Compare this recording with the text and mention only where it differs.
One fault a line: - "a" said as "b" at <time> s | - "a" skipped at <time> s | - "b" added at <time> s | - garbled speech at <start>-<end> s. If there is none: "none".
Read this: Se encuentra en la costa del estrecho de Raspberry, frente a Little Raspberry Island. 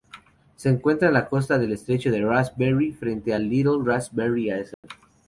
none